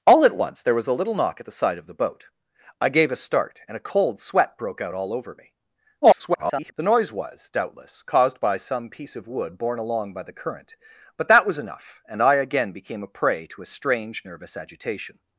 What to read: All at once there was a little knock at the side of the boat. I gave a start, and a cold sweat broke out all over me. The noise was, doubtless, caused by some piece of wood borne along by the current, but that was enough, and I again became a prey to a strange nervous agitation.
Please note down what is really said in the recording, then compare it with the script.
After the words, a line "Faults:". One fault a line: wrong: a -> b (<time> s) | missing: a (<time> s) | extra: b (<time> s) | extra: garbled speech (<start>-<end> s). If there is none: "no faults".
All at once there was a little knock at the side of the boat. I gave a start, and a cold sweat broke out all over me. [garbled] The noise was, doubtless, caused by some piece of wood borne along by the current, but that was enough, and I again became a prey to a strange nervous agitation.
Faults:
extra: garbled speech (6.0-6.7 s)